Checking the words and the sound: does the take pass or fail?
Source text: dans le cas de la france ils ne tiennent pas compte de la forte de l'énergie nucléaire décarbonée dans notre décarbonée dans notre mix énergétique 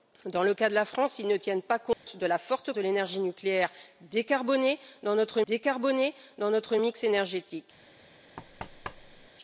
fail